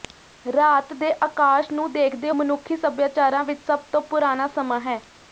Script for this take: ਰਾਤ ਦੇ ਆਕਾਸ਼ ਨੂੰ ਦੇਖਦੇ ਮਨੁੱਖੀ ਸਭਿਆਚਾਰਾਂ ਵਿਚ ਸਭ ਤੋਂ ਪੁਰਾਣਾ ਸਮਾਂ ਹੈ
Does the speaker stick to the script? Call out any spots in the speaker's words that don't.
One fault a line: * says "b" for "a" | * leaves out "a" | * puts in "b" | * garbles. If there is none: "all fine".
all fine